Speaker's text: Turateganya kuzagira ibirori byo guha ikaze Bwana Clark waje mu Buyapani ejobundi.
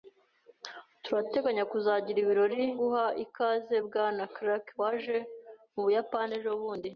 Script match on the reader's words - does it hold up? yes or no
no